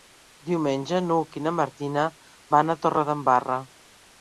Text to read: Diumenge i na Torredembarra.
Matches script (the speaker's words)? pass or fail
fail